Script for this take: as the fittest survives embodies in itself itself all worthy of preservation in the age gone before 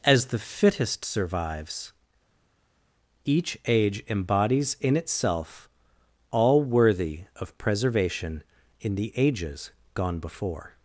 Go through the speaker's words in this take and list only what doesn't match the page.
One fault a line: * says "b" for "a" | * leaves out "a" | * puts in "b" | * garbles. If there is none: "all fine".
* puts in "each age"
* leaves out "itself"
* says "ages" for "age"